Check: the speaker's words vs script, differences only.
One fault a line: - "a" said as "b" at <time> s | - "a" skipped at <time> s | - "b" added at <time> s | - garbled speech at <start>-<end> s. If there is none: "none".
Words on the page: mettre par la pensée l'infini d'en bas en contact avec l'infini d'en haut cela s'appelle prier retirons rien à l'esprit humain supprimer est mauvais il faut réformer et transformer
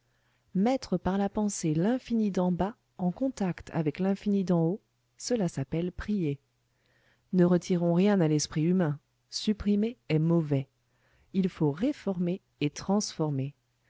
- "ne" added at 7.3 s